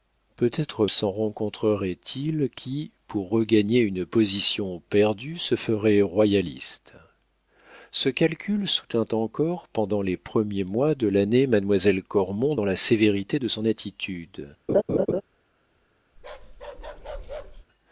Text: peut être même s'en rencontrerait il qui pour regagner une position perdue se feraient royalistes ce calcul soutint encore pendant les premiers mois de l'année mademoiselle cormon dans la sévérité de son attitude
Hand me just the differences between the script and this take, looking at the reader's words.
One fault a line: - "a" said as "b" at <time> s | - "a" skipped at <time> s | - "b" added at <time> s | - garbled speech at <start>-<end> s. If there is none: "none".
- "même" skipped at 0.9 s